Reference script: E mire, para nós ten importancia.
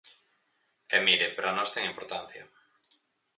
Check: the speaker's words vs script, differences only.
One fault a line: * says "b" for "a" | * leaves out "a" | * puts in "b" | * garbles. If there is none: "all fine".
all fine